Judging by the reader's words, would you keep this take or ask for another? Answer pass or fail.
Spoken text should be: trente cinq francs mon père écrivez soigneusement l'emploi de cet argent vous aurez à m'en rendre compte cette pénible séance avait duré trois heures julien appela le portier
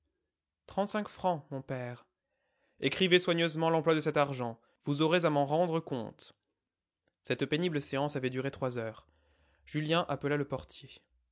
pass